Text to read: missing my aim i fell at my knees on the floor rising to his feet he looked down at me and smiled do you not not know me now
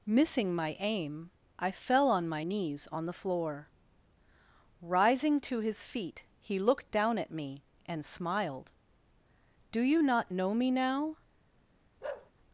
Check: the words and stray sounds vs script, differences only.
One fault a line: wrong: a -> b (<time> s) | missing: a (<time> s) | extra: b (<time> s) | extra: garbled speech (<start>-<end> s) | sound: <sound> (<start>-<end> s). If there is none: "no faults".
wrong: at -> on (2.1 s)
missing: not (10.3 s)
sound: bark (12.0-12.3 s)